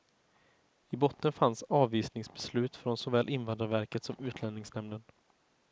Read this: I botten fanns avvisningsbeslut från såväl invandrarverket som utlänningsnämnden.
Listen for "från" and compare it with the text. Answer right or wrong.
right